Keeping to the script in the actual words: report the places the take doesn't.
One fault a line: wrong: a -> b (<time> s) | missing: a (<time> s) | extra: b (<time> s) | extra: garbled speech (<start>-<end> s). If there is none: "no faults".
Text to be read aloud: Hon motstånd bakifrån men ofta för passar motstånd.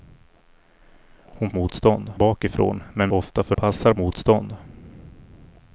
no faults